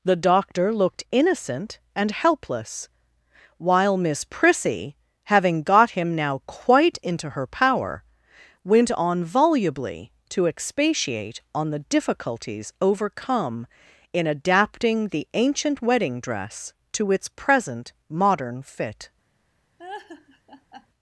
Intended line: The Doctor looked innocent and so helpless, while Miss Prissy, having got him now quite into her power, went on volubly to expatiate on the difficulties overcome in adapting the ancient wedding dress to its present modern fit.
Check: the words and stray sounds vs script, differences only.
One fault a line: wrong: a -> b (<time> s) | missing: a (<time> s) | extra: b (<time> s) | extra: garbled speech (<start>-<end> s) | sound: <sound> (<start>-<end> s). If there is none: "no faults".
missing: so (2.1 s)
sound: laugh (19.8-20.9 s)